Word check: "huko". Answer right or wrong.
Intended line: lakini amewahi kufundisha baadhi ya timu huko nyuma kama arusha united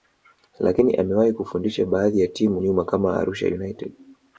wrong